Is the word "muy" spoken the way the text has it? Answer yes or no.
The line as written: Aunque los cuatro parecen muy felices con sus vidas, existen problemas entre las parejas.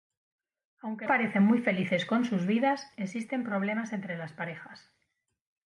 yes